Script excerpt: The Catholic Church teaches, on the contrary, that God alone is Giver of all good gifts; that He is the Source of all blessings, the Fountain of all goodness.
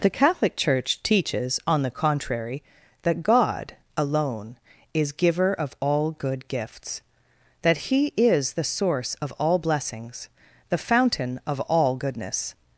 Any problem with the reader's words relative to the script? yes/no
no